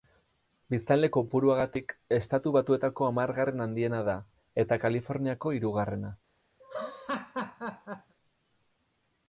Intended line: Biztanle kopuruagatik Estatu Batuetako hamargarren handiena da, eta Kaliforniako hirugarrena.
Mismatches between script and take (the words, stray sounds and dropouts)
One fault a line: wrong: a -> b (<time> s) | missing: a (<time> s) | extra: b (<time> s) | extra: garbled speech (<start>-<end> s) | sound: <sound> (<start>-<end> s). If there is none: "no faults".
sound: laugh (6.6-8.1 s)